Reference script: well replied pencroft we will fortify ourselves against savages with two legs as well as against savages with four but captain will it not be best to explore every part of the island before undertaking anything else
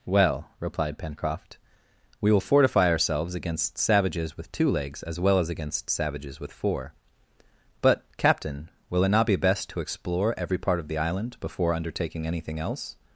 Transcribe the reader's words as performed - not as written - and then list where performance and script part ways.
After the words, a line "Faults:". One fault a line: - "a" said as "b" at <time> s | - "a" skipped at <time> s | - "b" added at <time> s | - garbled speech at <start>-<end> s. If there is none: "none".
well replied pencroft we will fortify ourselves against savages with two legs as well as against savages with four but captain will it not be best to explore every part of the island before undertaking anything else
Faults:
none